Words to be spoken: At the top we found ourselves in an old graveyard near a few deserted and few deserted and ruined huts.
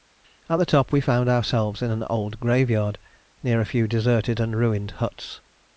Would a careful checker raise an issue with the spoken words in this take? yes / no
yes